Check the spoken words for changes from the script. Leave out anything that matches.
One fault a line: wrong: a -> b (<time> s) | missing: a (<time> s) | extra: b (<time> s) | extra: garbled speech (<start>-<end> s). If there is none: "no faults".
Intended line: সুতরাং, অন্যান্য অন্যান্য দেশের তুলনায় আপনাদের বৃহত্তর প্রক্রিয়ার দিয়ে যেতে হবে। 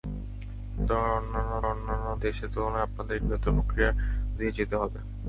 no faults